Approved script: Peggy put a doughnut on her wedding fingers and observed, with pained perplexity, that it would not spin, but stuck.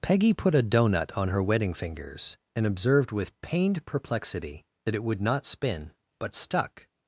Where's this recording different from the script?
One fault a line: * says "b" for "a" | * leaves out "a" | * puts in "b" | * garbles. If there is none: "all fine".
all fine